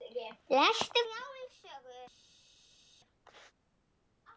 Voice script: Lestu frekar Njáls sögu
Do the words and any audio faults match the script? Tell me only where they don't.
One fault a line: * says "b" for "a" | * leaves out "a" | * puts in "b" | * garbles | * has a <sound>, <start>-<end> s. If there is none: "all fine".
* leaves out "frekar"